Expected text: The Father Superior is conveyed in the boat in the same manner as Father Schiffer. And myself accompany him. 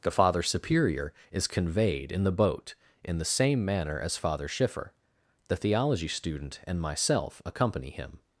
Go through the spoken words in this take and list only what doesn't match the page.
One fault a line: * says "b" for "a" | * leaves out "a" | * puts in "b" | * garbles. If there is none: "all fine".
* puts in "The theology student"